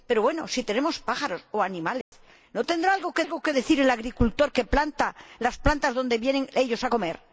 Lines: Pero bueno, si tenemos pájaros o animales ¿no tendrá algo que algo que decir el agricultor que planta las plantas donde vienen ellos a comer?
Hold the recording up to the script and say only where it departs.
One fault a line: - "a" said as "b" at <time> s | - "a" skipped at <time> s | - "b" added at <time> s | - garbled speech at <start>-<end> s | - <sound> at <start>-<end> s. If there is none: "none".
- dropout at 2.0-2.1 s